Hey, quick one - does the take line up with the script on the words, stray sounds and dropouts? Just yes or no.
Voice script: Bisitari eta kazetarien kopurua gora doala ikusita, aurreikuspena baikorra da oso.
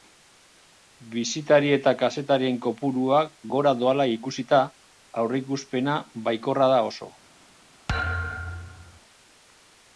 no